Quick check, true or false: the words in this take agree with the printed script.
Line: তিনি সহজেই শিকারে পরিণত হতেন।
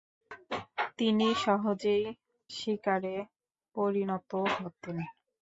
true